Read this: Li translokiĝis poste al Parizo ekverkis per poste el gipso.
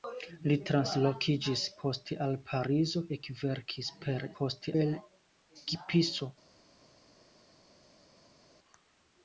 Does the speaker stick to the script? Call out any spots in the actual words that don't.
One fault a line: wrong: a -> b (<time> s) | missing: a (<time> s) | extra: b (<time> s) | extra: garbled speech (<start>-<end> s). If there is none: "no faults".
no faults